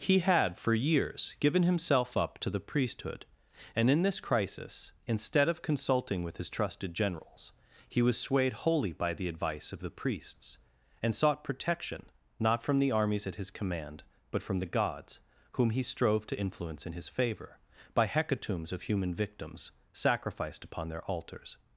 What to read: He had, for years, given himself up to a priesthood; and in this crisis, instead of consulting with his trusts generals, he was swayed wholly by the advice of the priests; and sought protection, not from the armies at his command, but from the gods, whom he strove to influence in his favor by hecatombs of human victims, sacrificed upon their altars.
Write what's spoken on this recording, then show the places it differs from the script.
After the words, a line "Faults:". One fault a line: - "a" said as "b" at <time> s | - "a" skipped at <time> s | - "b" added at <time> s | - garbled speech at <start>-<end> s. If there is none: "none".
He had, for years, given himself up to the priesthood; and in this crisis, instead of consulting with his trusted generals, he was swayed wholly by the advice of the priests; and sought protection, not from the armies at his command, but from the gods, whom he strove to influence in his favor by hecatombs of human victims, sacrificed upon their altars.
Faults:
- "a" said as "the" at 2.5 s
- "trusts" said as "trusted" at 6.5 s